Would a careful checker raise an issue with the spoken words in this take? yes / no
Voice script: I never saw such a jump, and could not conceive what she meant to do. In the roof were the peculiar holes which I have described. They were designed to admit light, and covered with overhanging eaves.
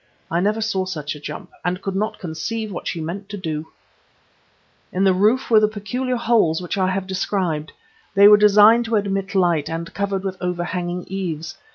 no